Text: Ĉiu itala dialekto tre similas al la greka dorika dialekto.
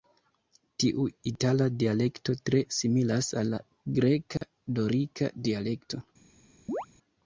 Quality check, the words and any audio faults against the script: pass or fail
fail